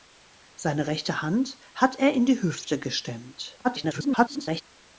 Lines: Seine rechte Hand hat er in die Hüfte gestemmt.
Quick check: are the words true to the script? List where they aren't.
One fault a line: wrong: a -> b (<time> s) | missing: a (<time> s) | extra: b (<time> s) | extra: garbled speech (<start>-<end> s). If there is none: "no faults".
extra: garbled speech (3.6-4.6 s)